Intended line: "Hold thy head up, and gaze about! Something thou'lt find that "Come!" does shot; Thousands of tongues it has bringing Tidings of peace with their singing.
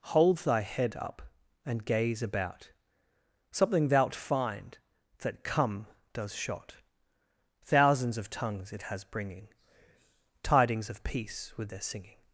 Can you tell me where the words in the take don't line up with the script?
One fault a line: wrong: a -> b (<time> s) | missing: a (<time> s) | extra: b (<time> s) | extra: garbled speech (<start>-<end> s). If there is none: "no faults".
no faults